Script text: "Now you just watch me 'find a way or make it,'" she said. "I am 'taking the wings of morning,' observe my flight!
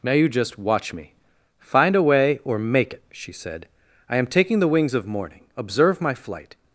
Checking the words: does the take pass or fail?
pass